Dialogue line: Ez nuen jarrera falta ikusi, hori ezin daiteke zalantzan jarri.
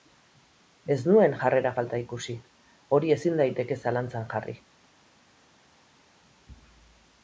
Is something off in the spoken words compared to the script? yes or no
no